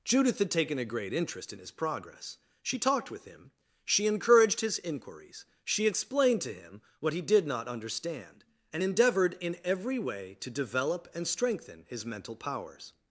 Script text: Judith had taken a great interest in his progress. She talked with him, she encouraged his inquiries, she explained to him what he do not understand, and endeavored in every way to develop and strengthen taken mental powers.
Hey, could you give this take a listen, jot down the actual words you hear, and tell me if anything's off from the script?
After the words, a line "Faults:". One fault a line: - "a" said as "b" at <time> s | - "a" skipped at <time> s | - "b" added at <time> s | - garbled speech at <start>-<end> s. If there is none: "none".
Judith had taken a great interest in his progress. She talked with him, she encouraged his inquiries, she explained to him what he did not understand, and endeavored in every way to develop and strengthen his mental powers.
Faults:
- "do" said as "did" at 7.2 s
- "taken" said as "his" at 11.9 s